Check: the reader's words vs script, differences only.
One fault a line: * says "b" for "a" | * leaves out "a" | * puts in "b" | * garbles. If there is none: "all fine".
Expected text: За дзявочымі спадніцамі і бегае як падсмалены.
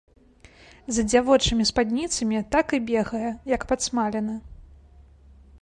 * puts in "так"